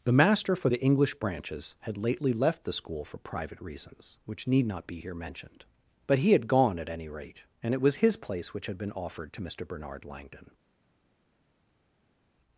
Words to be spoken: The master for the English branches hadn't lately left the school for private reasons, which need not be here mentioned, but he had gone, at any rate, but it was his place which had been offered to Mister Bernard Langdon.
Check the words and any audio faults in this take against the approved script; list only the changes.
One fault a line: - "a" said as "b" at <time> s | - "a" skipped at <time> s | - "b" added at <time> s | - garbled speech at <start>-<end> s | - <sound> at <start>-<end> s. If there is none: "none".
- "hadn't" said as "had" at 1.8 s
- "but" said as "and" at 7.6 s